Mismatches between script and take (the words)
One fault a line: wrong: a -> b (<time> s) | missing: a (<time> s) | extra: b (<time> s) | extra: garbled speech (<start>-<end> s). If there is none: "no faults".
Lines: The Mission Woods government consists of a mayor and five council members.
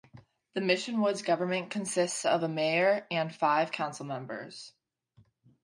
no faults